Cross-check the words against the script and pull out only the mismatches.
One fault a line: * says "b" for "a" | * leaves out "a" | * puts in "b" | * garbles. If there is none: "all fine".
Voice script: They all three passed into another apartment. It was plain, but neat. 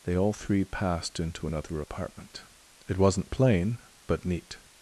* says "wasn't" for "was"